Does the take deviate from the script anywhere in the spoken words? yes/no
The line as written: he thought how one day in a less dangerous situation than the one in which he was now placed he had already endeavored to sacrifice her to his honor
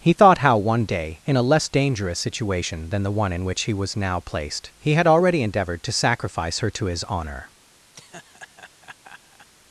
no